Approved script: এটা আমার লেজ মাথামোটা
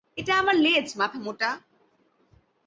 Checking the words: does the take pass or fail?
pass